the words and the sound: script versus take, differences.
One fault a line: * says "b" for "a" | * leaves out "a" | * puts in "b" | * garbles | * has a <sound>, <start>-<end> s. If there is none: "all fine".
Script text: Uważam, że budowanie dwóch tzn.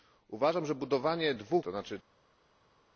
all fine